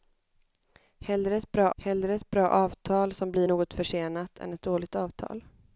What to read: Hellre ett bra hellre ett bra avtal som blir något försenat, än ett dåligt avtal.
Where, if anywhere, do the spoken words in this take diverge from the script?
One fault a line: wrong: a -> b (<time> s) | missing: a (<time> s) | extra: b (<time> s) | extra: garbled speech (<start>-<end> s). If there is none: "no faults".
no faults